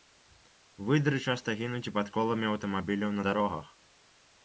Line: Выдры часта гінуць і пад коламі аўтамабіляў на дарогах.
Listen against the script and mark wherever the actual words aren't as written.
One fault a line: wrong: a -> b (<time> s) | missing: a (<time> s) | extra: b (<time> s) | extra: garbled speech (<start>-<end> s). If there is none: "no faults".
no faults